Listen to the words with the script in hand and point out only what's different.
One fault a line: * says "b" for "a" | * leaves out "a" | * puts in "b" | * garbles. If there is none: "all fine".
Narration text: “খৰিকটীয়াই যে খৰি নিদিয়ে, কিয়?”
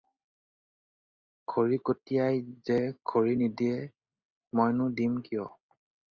* puts in "মইনো দিম"